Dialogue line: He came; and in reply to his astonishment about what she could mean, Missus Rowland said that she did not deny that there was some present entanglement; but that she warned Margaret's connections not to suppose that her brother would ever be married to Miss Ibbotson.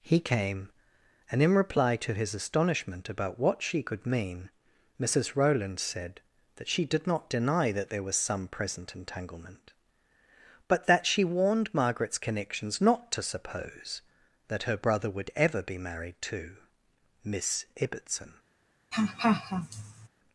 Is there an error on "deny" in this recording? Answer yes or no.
no